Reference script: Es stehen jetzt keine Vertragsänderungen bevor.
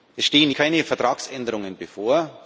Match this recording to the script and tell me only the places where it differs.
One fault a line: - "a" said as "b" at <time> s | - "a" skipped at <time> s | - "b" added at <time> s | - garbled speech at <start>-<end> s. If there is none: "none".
- "jetzt" skipped at 0.5 s